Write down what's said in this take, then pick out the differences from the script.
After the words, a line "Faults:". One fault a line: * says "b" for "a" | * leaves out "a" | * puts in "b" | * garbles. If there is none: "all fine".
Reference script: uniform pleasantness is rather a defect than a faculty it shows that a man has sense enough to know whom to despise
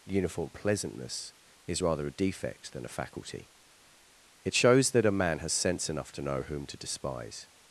uniform pleasantness is rather a defect than a faculty it shows that a man has sense enough to know whom to despise
Faults:
all fine